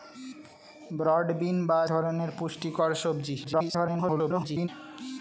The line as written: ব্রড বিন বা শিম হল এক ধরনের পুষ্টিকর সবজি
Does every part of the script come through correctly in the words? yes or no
no